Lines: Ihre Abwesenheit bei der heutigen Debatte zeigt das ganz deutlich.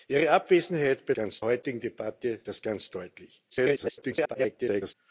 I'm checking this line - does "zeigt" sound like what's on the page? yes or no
no